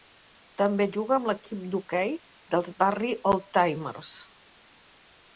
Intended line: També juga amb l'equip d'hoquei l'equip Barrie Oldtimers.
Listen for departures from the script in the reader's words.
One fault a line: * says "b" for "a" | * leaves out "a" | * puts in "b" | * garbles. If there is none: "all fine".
* says "dels" for "l'equip"